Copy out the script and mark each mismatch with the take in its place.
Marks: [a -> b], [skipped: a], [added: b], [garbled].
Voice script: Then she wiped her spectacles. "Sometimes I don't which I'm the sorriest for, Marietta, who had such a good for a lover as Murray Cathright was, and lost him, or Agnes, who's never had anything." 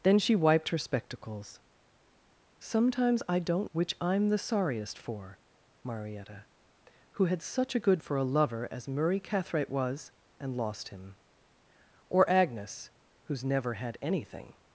Then she wiped her spectacles. "Sometimes I don't which I'm the sorriest for, Marietta, who had such a good for a lover as Murray Cathright was, and lost him, or Agnes, who's never had anything."